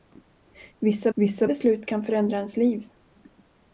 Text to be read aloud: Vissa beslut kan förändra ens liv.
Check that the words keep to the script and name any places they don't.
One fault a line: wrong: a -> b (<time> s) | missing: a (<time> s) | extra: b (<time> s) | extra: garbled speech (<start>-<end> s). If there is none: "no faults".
extra: vissa (1.1 s)